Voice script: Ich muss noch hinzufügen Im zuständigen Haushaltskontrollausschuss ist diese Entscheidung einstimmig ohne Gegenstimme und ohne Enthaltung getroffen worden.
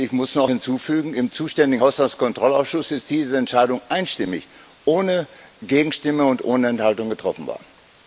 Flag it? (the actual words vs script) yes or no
no